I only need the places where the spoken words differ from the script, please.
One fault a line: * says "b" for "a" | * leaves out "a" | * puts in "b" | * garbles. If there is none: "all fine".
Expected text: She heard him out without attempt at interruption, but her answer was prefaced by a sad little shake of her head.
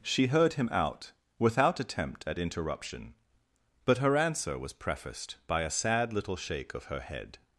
all fine